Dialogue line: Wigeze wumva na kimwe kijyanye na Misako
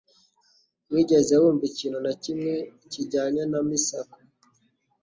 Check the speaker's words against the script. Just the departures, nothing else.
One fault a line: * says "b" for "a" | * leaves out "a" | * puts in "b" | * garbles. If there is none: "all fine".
* puts in "ikintu"